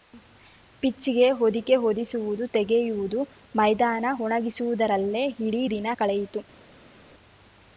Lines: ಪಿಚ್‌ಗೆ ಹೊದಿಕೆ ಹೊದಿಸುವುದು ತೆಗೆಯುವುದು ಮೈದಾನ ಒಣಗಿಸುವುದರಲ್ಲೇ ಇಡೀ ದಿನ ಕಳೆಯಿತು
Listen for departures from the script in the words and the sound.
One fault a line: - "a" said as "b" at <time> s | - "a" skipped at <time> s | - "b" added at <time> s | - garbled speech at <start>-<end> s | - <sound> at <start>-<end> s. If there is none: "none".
none